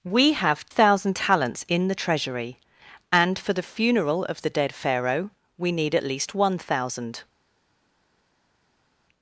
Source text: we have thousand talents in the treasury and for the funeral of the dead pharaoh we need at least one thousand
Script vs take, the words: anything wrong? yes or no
no